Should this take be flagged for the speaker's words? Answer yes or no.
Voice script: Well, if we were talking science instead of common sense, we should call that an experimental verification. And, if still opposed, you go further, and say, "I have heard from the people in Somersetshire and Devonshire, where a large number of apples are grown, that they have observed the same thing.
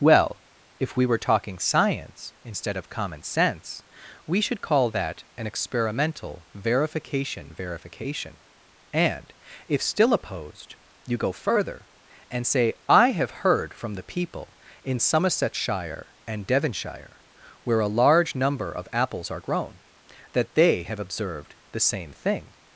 yes